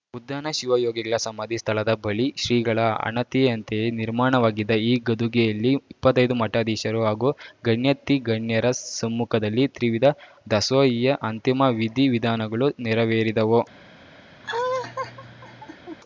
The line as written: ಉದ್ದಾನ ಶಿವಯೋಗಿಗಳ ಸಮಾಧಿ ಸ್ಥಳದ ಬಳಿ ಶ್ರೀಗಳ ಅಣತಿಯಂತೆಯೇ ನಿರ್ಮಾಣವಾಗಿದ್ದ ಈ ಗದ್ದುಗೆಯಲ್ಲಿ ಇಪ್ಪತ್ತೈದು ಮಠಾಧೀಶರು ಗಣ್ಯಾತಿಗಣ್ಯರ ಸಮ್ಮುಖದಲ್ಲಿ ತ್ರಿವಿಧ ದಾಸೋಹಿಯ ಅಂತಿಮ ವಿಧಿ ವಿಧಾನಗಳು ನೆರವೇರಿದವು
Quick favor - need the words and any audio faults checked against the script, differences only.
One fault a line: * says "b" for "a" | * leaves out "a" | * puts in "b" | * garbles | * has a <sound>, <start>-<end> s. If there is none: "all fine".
* puts in "ಹಾಗೂ"
* has a laugh, 14.4-16.0 s